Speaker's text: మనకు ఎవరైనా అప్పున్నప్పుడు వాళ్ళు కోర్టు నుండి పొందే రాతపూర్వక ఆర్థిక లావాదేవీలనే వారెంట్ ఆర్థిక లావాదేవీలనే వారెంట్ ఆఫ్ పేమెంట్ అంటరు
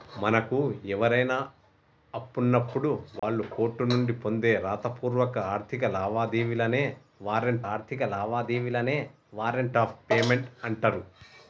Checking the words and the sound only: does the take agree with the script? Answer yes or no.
no